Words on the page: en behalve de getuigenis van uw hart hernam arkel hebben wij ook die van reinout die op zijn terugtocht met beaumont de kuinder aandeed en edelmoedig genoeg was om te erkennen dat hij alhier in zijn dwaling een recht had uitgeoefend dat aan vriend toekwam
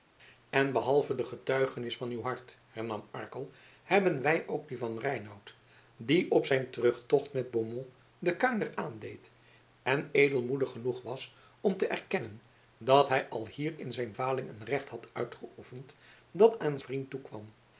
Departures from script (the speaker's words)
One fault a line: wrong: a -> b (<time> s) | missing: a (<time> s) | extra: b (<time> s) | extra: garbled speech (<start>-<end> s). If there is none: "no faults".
no faults